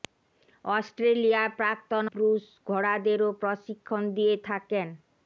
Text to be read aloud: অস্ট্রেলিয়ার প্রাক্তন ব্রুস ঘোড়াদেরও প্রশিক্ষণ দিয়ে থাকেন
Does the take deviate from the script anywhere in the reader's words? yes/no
no